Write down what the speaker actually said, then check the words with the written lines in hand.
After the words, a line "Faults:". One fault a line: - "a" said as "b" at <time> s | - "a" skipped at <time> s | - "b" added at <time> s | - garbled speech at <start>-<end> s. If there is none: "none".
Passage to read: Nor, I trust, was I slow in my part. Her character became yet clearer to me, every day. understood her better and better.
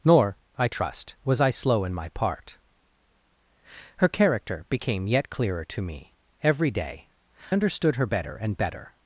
Nor, I trust, was I slow in my part. Her character became yet clearer to me, every day. understood her better and better.
Faults:
none